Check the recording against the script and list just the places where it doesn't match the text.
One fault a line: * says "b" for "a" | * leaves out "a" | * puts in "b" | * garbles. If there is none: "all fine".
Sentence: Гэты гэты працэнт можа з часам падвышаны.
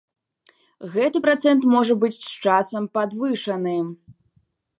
* leaves out "гэты"
* puts in "быць"